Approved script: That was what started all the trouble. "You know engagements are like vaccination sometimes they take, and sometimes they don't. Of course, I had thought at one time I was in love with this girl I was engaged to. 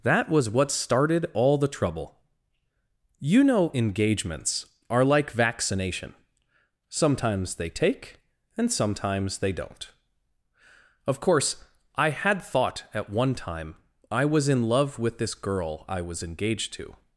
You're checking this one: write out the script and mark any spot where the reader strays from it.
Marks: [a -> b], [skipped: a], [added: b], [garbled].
That was what started all the trouble. "You know engagements are like vaccination sometimes they take, and sometimes they don't. Of course, I had thought at one time I was in love with this girl I was engaged to.